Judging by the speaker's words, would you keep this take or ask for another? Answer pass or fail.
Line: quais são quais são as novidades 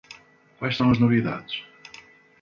fail